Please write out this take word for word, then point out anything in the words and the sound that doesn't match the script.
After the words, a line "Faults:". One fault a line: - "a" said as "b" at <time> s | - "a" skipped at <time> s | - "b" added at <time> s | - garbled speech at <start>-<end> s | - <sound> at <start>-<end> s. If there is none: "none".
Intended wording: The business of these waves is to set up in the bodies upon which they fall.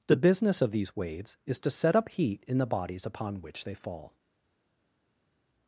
The business of these waves is to set up heat in the bodies upon which they fall.
Faults:
- "heat" added at 2.1 s